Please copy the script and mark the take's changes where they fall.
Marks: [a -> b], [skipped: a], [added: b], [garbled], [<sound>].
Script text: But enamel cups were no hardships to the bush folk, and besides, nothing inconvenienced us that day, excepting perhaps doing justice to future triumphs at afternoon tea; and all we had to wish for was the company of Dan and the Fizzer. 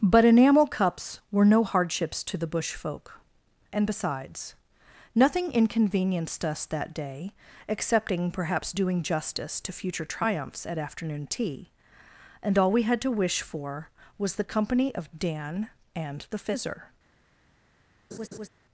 But enamel cups were no hardships to the bush folk, and besides, nothing inconvenienced us that day, excepting perhaps doing justice to future triumphs at afternoon tea; and all we had to wish for was the company of Dan and the Fizzer. [laugh]